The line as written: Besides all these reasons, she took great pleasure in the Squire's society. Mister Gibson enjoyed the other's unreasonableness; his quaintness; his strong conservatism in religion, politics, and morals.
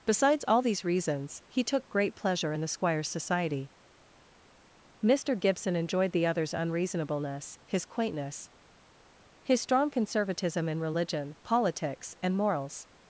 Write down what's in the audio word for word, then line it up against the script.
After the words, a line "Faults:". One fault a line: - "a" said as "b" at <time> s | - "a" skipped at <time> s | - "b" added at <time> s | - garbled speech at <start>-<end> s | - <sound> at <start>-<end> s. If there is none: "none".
Besides all these reasons, he took great pleasure in the Squire's society. Mister Gibson enjoyed the other's unreasonableness; his quaintness; his strong conservatism in religion, politics, and morals.
Faults:
- "she" said as "he" at 1.5 s